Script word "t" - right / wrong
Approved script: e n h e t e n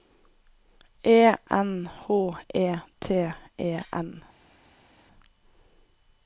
right